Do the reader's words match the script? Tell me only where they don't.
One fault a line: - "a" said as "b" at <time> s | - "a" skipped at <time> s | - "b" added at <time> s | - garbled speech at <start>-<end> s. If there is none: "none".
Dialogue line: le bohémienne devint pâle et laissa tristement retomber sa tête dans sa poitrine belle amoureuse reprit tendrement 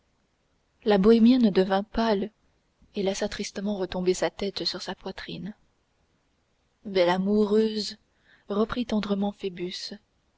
- "le" said as "la" at 0.8 s
- "dans" said as "sur" at 4.6 s